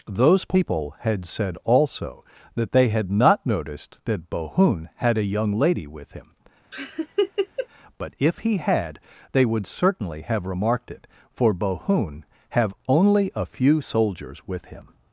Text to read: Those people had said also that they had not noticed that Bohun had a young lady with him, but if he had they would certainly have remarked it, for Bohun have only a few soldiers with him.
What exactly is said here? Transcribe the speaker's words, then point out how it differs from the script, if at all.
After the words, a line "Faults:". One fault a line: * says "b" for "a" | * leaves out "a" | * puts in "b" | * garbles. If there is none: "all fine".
Those people had said also that they had not noticed that Bohun had a young lady with him, but if he had they would certainly have remarked it, for Bohun have only a few soldiers with him.
Faults:
all fine